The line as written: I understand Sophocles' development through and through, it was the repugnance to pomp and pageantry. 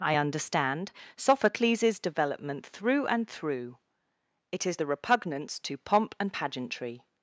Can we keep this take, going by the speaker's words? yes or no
no